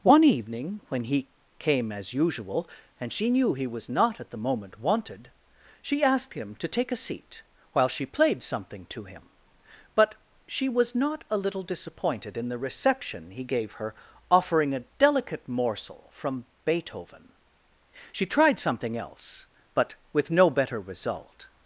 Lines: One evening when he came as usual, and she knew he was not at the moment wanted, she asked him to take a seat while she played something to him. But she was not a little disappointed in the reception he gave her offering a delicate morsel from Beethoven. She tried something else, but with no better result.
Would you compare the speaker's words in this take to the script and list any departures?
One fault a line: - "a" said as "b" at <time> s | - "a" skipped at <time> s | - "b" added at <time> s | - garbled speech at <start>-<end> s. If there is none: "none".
none